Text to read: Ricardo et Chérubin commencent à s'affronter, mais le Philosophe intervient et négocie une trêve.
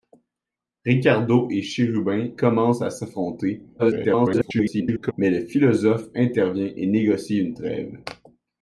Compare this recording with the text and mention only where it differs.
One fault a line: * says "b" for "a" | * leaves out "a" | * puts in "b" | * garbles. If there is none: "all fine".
* garbles